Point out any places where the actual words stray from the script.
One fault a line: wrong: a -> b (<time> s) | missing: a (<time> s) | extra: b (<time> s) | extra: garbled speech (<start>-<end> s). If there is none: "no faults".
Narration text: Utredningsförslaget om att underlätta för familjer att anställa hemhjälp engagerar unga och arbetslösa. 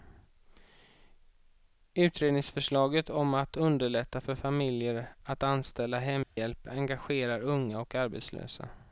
no faults